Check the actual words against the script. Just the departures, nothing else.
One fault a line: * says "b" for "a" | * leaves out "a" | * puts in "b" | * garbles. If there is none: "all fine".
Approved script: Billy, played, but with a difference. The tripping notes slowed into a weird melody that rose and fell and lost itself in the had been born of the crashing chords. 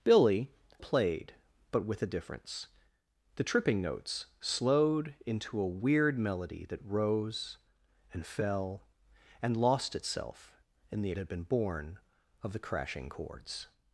all fine